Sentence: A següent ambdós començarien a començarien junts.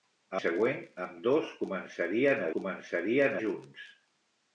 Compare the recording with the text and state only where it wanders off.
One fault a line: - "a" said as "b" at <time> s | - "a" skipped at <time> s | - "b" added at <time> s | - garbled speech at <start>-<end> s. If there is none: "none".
none